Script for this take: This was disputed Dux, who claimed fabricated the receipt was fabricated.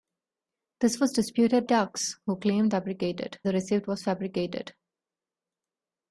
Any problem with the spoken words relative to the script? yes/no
no